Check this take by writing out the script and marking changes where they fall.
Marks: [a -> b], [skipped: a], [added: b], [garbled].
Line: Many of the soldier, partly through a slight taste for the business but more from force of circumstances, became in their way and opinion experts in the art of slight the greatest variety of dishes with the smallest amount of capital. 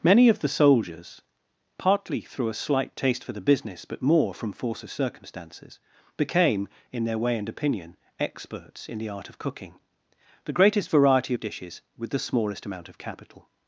Many of the [soldier, -> soldiers] partly through a slight taste for the business but more from force of circumstances, became in their way and opinion experts in the art of [slight -> cooking] the greatest variety of dishes with the smallest amount of capital.